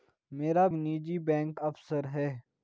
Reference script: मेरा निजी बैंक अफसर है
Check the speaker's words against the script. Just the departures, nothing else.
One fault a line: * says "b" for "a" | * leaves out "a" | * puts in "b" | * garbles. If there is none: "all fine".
all fine